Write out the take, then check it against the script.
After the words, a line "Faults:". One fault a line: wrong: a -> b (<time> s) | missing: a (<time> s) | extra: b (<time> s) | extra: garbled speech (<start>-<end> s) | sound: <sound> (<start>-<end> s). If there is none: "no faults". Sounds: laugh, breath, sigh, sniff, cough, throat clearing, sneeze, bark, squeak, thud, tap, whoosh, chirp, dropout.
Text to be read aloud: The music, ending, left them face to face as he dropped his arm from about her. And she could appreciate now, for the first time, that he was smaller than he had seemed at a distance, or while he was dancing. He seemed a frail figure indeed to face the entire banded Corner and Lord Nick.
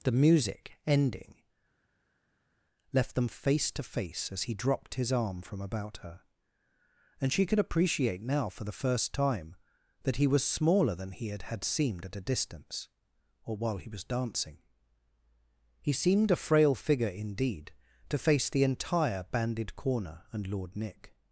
The music, ending, left them face to face as he dropped his arm from about her. And she could appreciate now, for the first time, that he was smaller than he had had seemed at a distance, or while he was dancing. He seemed a frail figure indeed to face the entire banded Corner and Lord Nick.
Faults:
extra: had (11.4 s)